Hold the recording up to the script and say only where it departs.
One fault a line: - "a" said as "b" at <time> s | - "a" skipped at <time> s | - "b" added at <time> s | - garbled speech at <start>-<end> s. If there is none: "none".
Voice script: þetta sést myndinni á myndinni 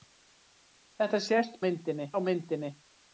none